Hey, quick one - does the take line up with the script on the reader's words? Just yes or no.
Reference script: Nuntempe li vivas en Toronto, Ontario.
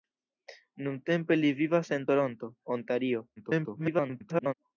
no